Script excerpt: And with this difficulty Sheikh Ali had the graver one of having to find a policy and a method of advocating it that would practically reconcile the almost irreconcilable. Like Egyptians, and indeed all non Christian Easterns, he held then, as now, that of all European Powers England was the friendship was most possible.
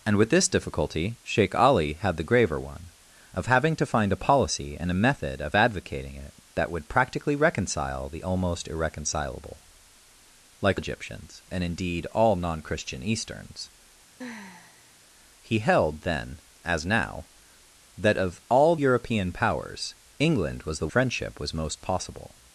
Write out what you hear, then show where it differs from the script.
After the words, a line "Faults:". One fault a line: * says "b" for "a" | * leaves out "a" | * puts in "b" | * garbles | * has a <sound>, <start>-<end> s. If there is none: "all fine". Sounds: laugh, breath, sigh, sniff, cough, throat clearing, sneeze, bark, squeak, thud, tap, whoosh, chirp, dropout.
And with this difficulty Sheikh Ali had the graver one of having to find a policy and a method of advocating it that would practically reconcile the almost irreconcilable. Like Egyptians, and indeed all non Christian Easterns, he held then, as now, that of all European Powers England was the friendship was most possible.
Faults:
* has a sigh, 14.2-14.9 s